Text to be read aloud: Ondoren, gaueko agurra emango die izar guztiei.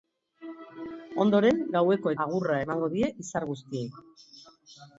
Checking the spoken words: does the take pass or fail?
pass